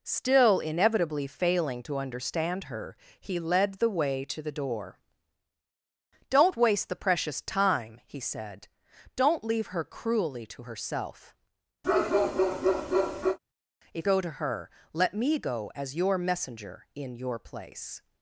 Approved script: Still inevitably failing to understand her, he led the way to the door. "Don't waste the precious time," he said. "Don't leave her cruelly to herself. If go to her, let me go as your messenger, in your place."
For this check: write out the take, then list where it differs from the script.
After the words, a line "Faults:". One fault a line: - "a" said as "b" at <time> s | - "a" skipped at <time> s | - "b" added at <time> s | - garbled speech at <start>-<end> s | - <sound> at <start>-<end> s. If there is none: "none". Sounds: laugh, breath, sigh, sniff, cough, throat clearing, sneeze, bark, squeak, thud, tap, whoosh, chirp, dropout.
Still inevitably failing to understand her, he led the way to the door. "Don't waste the precious time," he said. "Don't leave her cruelly to herself. If go to her, let me go as your messenger, in your place."
Faults:
- bark at 11.8-13.4 s